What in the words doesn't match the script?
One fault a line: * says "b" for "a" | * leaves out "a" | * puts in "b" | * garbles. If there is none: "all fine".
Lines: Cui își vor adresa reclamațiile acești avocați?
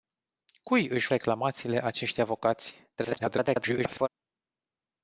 * leaves out "vor adresa"
* garbles